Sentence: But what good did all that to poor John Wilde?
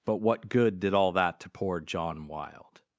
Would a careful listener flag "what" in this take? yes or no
no